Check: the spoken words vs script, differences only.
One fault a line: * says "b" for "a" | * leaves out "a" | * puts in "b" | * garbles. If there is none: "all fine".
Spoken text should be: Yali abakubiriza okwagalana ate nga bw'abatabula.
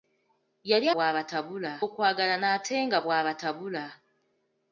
* says "bw'abatabula" for "abakubiriza"